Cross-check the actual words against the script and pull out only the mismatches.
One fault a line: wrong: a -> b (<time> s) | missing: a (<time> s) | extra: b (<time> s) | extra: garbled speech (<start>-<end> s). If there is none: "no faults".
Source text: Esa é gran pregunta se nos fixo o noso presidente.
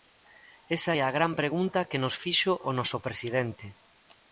extra: a (1.0 s)
wrong: se -> que (1.9 s)